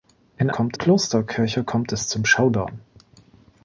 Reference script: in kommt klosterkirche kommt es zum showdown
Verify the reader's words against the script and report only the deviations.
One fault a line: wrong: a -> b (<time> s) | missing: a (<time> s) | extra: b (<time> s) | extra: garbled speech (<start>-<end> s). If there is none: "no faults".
no faults